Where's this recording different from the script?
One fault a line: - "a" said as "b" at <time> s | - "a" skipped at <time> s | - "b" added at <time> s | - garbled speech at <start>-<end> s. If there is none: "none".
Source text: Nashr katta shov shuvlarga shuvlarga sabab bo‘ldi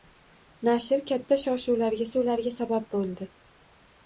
none